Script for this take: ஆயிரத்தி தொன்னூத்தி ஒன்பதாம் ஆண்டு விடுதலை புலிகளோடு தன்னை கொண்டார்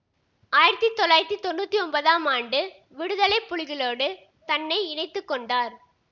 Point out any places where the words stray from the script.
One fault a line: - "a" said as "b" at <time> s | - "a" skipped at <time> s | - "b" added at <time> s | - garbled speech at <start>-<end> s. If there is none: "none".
- "தொள்ளாயிரத்தி" added at 0.9 s
- "இணைத்து" added at 4.9 s